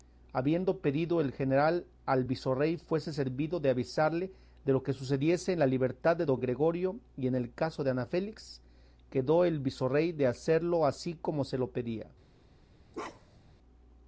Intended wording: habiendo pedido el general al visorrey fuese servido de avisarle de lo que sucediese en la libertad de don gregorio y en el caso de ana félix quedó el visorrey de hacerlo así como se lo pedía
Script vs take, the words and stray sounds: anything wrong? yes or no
yes